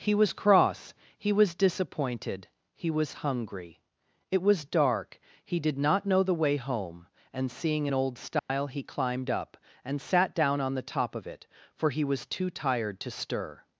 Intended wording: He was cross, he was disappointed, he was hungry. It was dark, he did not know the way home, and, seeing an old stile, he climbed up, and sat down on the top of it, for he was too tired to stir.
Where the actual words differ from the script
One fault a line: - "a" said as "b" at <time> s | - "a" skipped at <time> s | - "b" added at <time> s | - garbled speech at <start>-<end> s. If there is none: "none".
none